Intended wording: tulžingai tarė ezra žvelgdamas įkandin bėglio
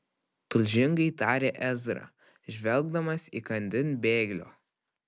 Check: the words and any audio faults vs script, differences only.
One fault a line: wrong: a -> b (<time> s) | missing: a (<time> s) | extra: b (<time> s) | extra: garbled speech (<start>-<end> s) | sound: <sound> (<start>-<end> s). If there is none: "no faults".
no faults